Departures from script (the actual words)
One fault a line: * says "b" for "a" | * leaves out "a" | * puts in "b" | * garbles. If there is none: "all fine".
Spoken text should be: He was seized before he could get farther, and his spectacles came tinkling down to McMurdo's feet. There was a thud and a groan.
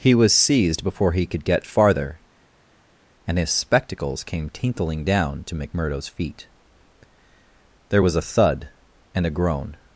all fine